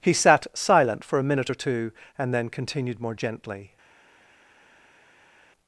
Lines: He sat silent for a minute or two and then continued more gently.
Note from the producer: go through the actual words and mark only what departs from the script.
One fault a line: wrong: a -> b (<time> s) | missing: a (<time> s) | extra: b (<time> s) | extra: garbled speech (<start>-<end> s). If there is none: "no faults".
no faults